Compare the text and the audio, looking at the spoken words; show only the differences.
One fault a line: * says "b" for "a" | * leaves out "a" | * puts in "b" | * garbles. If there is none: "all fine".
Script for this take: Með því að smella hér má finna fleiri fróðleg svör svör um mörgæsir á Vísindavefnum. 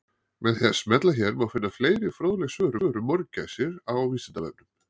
all fine